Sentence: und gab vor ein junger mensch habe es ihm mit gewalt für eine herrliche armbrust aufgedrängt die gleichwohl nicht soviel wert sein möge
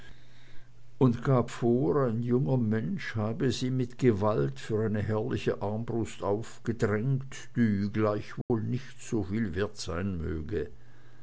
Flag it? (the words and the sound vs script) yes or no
yes